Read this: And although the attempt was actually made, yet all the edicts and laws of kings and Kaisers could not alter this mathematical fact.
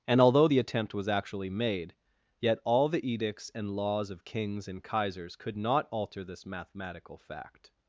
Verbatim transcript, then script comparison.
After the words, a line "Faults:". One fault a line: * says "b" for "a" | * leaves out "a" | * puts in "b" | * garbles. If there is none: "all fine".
And although the attempt was actually made, yet all the edicts and laws of kings and Kaisers could not alter this mathematical fact.
Faults:
all fine